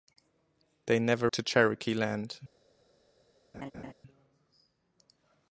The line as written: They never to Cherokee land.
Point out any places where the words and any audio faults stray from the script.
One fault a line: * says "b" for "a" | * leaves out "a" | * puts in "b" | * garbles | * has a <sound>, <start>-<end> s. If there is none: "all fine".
* has a laugh, 3.5-3.9 s